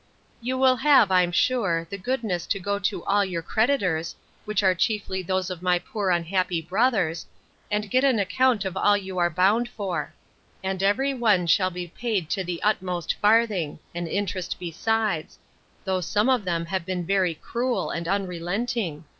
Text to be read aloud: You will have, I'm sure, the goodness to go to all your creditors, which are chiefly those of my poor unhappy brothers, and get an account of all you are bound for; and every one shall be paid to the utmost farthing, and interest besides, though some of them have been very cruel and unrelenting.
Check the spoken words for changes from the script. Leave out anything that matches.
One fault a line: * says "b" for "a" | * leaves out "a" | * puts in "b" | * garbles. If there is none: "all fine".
all fine